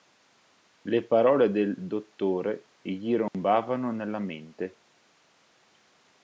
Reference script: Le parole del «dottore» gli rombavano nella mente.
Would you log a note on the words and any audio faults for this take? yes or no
yes